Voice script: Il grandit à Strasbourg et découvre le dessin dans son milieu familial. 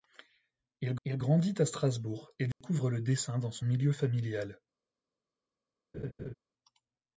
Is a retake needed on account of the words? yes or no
yes